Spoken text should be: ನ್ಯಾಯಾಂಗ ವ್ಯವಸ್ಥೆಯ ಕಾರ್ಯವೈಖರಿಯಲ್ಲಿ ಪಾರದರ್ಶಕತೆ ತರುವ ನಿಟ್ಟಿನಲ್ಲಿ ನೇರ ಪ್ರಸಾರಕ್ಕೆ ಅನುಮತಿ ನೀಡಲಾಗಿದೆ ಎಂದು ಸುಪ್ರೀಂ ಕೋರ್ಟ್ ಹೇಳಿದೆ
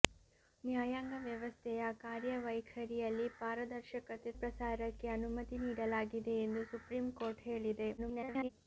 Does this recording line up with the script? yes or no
no